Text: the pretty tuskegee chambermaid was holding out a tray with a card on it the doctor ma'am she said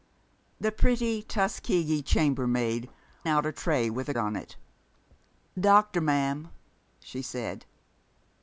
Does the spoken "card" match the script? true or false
false